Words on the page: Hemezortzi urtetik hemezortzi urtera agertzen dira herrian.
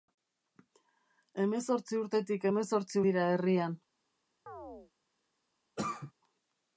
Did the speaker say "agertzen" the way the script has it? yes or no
no